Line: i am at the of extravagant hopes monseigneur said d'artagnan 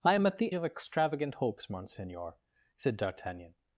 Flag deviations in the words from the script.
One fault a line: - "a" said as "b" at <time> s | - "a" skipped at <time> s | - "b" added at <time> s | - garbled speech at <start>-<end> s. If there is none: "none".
none